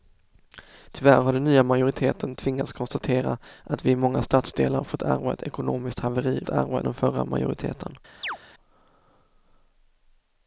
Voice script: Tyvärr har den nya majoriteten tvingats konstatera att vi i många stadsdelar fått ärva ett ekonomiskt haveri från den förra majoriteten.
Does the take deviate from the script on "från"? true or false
true